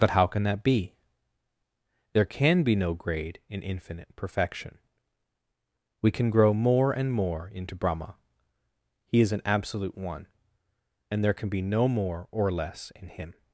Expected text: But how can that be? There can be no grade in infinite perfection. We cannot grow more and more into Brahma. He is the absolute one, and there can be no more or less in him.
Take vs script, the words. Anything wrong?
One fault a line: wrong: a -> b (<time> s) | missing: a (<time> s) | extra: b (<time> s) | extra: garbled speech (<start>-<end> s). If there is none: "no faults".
wrong: cannot -> can (6.1 s)
wrong: the -> an (9.3 s)